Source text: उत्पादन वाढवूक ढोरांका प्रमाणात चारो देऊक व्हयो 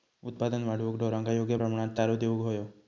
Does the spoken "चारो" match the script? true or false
true